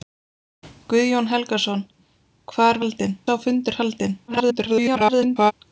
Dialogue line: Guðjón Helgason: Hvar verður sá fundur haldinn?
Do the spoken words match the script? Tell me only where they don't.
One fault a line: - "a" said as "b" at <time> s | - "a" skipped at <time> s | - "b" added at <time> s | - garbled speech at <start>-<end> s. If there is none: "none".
- "verður" said as "haldinn" at 2.8 s
- garbled speech at 4.3-5.5 s